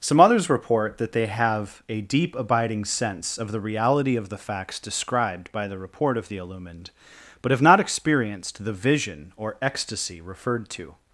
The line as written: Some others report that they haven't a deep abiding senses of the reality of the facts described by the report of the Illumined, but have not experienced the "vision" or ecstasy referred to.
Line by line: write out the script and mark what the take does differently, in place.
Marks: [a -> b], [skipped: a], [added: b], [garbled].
Some others report that they [haven't -> have] a deep abiding [senses -> sense] of the reality of the facts described by the report of the Illumined, but have not experienced the "vision" or ecstasy referred to.